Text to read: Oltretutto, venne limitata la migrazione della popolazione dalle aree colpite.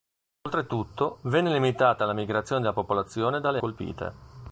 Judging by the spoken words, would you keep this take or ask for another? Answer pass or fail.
fail